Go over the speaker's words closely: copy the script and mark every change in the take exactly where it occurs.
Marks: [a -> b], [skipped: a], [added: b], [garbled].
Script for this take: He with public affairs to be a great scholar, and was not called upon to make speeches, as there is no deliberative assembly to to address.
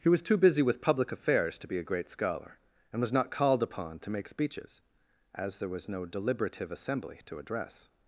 He [added: was too busy] with public affairs to be a great scholar, and was not called upon to make speeches, as there [is -> was] no deliberative assembly to [skipped: to] address.